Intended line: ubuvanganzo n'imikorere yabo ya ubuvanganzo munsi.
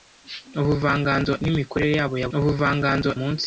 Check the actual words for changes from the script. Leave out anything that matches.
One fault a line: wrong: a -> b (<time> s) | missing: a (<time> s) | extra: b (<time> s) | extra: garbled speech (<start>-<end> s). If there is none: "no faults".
no faults